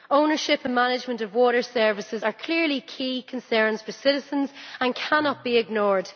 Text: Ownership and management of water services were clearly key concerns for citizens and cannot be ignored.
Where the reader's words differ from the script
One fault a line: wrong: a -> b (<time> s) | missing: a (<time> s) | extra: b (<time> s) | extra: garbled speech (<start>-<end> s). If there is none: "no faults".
wrong: were -> are (2.2 s)